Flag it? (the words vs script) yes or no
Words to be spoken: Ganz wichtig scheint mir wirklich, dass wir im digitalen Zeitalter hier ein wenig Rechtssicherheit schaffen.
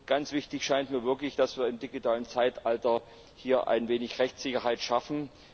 no